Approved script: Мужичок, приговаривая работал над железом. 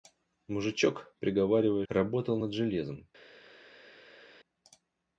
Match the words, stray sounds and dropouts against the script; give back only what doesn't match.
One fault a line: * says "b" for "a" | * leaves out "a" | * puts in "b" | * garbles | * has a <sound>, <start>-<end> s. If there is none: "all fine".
all fine